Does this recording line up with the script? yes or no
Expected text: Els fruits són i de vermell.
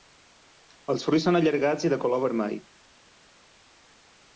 no